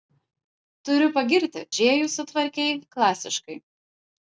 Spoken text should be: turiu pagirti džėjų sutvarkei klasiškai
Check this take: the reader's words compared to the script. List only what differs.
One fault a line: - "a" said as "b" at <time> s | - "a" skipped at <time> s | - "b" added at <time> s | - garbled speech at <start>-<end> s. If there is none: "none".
none